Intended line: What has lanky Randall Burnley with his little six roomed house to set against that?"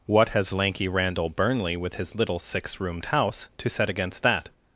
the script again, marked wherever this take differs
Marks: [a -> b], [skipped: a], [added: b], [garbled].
What has lanky Randall Burnley with his little six roomed house to set against that?"